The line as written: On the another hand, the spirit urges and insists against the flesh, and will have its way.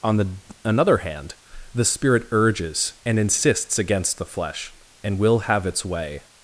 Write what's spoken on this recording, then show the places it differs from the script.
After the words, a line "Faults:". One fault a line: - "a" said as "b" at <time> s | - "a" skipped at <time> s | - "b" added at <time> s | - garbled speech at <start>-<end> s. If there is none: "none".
On the another hand, the spirit urges and insists against the flesh, and will have its way.
Faults:
none